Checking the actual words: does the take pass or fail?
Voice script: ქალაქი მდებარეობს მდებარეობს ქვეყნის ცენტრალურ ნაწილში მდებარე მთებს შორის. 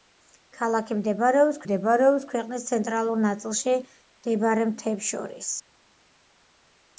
pass